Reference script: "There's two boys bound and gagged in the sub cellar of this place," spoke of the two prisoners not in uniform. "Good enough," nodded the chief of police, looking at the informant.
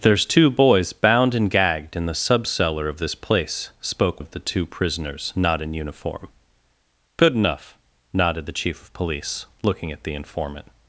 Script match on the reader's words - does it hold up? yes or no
yes